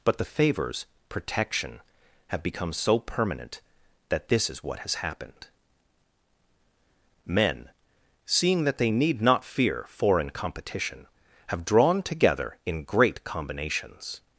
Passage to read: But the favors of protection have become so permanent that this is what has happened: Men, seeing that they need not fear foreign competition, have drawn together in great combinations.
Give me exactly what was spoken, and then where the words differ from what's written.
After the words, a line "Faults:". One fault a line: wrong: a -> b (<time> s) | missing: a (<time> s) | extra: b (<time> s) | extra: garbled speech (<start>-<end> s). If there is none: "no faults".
But the favors protection have become so permanent that this is what has happened: Men, seeing that they need not fear foreign competition, have drawn together in great combinations.
Faults:
missing: of (0.8 s)